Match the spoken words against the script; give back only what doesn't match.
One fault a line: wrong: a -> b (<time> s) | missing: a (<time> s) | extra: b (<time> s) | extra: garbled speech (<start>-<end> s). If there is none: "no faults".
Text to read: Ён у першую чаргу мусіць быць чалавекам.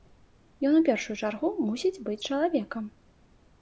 no faults